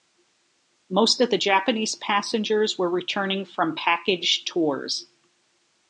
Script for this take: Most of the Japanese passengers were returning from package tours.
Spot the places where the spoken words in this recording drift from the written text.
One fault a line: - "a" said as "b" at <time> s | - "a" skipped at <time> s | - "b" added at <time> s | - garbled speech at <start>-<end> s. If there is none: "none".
none